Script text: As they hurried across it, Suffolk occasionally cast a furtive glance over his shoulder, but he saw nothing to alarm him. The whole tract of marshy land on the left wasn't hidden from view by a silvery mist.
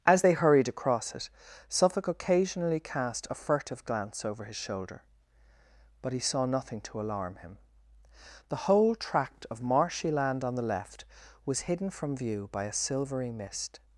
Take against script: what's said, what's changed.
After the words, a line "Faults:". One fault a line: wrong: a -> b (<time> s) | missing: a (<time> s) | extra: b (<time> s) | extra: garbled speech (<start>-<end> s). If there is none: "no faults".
As they hurried across it, Suffolk occasionally cast a furtive glance over his shoulder, but he saw nothing to alarm him. The whole tract of marshy land on the left was hidden from view by a silvery mist.
Faults:
wrong: wasn't -> was (11.4 s)